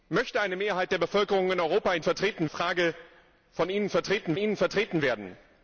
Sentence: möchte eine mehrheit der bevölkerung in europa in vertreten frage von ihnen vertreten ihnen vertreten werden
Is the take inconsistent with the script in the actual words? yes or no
no